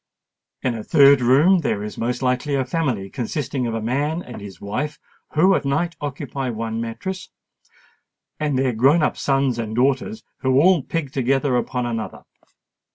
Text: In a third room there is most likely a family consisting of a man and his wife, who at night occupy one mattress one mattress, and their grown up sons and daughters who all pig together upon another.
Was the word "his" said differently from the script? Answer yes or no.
no